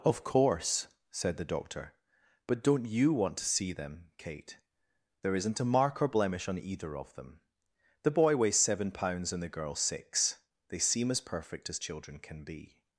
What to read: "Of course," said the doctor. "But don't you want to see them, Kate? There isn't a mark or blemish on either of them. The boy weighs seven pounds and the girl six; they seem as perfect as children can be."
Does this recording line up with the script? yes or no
yes